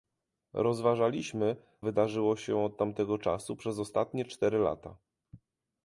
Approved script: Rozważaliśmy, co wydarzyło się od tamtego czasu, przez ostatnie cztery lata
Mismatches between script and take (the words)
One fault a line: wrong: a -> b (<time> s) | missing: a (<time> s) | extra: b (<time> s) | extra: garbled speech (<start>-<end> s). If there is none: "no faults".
missing: co (1.6 s)